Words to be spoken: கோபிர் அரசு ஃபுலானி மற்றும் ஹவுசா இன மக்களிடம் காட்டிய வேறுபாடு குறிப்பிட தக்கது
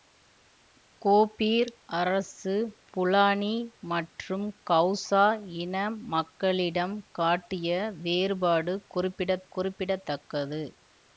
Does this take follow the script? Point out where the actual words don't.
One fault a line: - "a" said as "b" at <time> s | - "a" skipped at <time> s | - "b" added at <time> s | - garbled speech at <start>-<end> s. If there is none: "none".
- "குறிப்பிட" added at 9.5 s